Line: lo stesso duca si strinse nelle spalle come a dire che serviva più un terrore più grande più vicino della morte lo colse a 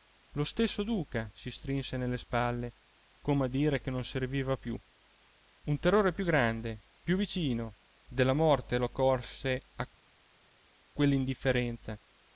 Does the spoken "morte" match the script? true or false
true